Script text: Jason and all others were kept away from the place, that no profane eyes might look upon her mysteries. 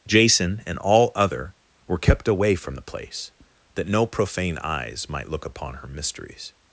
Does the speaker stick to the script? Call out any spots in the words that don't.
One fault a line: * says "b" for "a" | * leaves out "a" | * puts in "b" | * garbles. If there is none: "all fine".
* says "other" for "others"